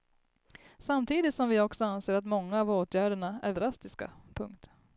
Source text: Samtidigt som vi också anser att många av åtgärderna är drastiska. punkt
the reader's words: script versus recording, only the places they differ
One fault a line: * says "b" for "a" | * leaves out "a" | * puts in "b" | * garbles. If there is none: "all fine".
all fine